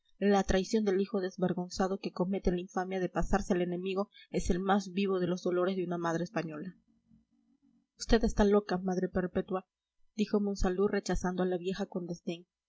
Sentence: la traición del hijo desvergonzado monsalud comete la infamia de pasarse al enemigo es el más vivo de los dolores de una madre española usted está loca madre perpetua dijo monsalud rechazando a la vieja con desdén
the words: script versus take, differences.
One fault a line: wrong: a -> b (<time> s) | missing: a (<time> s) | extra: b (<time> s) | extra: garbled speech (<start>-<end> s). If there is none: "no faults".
wrong: monsalud -> que (2.0 s)